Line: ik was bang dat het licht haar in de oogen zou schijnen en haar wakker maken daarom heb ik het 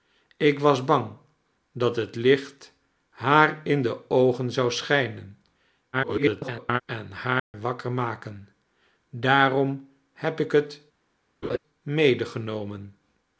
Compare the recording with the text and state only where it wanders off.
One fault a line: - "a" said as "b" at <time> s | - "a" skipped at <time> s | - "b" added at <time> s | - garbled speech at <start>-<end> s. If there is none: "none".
- garbled speech at 5.9-6.8 s